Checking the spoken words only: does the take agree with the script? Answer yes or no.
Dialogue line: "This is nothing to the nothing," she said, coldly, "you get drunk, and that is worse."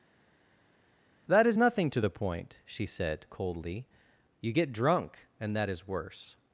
no